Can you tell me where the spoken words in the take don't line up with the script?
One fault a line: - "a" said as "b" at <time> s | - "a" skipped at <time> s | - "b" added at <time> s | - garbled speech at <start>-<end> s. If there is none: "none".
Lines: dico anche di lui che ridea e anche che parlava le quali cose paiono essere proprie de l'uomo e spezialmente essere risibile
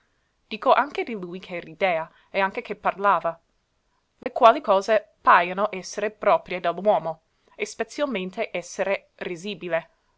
none